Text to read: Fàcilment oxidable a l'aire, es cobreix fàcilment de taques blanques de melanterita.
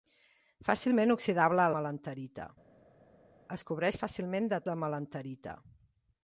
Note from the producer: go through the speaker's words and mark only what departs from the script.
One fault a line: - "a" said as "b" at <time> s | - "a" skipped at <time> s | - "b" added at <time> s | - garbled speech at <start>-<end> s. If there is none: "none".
- "l'aire" said as "melanterita" at 1.8 s
- "taques blanques" skipped at 4.6 s